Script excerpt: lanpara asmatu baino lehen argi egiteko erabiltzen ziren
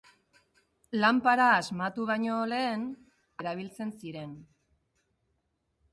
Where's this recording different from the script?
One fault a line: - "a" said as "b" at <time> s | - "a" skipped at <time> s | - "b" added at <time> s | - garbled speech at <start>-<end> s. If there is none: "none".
- "argi egiteko" skipped at 2.9 s